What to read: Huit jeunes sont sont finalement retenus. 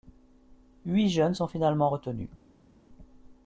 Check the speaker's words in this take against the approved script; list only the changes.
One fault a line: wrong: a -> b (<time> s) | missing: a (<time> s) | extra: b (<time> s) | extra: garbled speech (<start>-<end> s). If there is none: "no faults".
missing: sont (1.5 s)